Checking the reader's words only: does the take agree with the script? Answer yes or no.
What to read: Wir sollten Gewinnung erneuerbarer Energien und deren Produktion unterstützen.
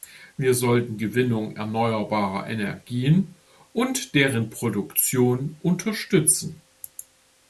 yes